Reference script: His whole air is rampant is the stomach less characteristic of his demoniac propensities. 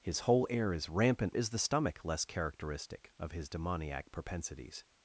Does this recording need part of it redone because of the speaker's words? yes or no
no